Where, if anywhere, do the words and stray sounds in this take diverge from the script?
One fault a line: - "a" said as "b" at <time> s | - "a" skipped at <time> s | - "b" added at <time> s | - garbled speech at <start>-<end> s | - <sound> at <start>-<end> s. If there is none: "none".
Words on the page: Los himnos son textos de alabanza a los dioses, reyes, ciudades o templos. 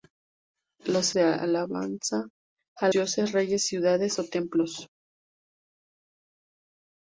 - "himnos son textos" skipped at 1.1 s
- "los" skipped at 2.9 s